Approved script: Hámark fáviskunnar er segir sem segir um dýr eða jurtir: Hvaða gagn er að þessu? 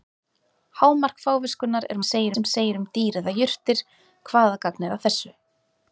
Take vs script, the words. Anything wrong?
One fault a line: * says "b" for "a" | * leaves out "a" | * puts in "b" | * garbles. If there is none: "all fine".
all fine